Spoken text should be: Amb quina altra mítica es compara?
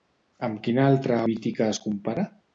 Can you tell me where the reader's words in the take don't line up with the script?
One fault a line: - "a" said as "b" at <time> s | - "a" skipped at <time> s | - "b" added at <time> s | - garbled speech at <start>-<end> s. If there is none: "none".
none